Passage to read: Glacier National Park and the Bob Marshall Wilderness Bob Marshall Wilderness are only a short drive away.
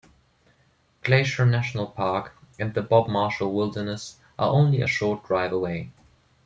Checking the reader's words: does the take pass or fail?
fail